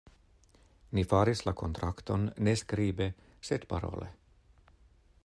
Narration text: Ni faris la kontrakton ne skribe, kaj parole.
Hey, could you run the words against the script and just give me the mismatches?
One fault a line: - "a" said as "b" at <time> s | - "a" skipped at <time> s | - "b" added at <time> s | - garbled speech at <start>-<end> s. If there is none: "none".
- "kaj" said as "sed" at 3.5 s